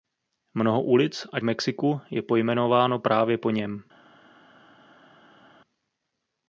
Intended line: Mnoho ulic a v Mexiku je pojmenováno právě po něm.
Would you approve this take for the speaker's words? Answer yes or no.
yes